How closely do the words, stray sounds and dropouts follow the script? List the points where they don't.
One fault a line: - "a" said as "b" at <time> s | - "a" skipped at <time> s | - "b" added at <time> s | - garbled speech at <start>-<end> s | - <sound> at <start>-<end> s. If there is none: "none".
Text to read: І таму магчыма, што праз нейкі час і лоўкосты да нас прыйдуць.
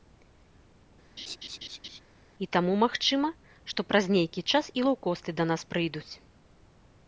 - laugh at 1.2-2.0 s